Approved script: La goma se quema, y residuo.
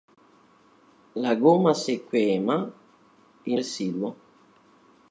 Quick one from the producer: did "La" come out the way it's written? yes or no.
yes